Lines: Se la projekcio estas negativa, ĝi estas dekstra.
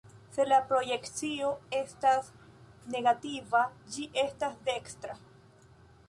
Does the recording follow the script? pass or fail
pass